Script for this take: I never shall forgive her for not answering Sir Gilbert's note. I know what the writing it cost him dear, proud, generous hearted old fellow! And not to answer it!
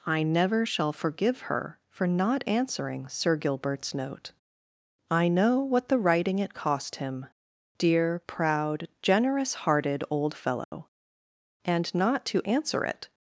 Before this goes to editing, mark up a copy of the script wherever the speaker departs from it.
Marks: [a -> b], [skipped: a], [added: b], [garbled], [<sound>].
I never shall forgive her for not answering Sir Gilbert's note. I know what the writing it cost him dear, proud, generous hearted old fellow! [dropout] And not to answer it!